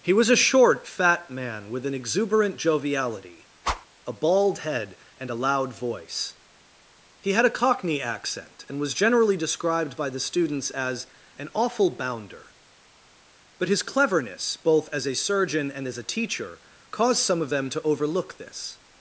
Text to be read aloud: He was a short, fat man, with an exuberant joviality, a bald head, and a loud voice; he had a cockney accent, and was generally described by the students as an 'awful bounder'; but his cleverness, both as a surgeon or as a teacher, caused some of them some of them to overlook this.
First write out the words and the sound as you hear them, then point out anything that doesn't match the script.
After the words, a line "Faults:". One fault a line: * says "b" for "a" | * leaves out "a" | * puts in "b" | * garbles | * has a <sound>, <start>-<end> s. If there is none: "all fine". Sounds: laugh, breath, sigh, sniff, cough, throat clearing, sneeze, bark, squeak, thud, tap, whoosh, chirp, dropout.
He was a short, fat man, with an exuberant joviality, a bald head, and a loud voice; he had a cockney accent, and was generally described by the students as an 'awful bounder'; but his cleverness, both as a surgeon and as a teacher, caused some of them to overlook this.
Faults:
* has a whoosh, 3.6-3.9 s
* says "and" for "or"
* leaves out "some of them"